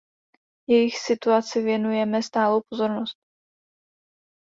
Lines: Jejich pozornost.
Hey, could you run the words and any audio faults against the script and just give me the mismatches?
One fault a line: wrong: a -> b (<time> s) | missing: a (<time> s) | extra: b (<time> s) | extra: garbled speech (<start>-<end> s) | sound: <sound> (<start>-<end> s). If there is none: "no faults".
extra: situaci věnujeme stálou (1.0 s)